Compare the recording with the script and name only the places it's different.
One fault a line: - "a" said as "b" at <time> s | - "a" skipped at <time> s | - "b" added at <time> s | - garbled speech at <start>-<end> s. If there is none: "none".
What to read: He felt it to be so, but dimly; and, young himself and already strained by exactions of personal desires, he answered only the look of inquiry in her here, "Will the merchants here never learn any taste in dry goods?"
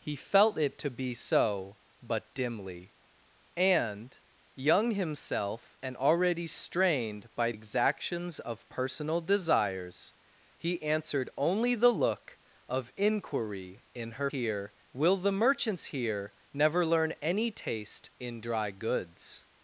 none